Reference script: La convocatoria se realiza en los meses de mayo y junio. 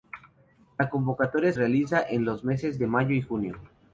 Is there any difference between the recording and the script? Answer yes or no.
yes